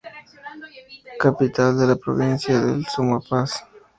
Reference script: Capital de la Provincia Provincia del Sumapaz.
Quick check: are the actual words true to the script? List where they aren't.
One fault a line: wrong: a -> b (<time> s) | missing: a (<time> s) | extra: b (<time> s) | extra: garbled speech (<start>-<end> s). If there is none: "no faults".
missing: Provincia (2.6 s)